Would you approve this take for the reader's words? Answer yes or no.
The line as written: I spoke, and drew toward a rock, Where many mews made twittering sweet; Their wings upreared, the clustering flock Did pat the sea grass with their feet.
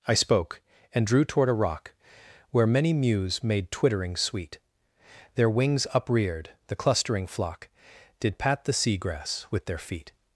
yes